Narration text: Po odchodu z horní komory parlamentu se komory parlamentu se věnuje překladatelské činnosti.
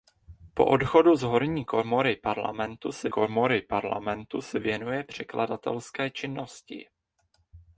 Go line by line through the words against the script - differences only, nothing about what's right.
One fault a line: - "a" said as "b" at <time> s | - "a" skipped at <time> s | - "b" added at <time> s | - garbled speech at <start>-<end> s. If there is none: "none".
none